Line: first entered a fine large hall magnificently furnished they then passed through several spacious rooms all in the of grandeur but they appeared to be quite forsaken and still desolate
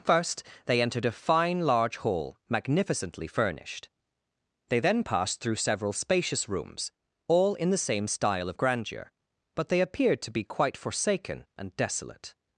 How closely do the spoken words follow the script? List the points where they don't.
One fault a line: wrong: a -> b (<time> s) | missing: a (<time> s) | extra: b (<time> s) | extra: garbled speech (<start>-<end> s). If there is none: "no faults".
extra: they (0.7 s)
extra: same style (7.8 s)
missing: still (11.7 s)